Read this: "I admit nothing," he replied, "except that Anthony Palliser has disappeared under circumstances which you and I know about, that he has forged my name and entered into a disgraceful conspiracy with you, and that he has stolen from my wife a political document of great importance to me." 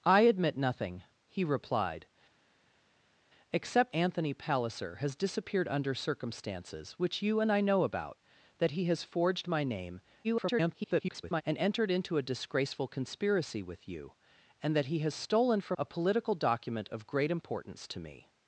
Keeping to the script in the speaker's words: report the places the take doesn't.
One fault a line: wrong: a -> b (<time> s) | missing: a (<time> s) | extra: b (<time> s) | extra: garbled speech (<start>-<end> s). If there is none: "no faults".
missing: that (3.9 s)
extra: garbled speech (10.2-11.4 s)
missing: my wife (15.8 s)